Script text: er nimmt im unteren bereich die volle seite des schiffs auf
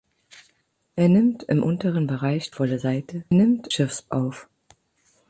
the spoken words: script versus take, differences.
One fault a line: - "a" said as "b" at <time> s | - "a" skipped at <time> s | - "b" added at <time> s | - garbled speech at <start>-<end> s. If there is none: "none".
- "die" skipped at 2.5 s
- "des" said as "nimmt" at 3.3 s